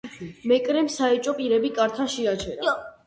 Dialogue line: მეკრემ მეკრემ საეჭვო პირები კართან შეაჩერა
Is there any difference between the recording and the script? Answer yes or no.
yes